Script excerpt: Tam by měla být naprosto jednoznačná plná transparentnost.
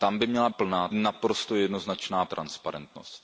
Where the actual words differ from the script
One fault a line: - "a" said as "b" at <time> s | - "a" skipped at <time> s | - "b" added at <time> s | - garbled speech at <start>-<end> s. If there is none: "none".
- "být" said as "plná" at 0.5 s
- "plná" skipped at 2.2 s